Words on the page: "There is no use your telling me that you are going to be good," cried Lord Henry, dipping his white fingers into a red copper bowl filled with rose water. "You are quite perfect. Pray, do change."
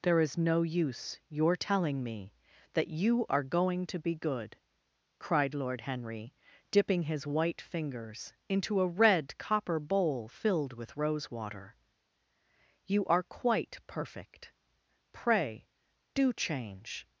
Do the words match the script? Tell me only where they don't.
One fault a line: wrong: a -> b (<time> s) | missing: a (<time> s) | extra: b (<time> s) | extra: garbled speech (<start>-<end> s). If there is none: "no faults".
no faults